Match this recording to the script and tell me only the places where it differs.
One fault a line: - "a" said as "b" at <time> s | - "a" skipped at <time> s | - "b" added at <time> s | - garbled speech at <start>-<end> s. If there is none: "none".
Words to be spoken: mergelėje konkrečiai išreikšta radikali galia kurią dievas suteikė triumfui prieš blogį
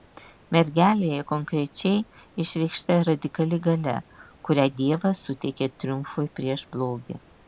none